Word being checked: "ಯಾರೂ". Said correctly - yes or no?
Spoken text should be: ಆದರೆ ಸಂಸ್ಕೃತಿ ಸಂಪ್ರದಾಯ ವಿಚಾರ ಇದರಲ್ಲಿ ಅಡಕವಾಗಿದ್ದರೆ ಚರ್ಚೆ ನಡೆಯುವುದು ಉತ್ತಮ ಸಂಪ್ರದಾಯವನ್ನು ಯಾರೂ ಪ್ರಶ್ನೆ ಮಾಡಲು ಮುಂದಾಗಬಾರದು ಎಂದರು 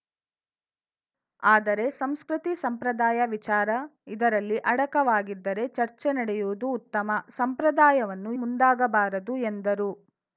no